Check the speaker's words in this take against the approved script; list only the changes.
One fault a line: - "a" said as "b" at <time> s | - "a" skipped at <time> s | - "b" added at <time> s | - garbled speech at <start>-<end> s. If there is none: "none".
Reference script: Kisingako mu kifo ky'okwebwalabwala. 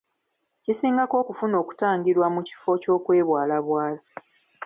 - "okufuna okutangirwa" added at 1.2 s